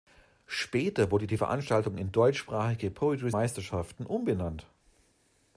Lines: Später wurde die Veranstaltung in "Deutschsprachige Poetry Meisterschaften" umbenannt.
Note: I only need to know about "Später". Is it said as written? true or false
true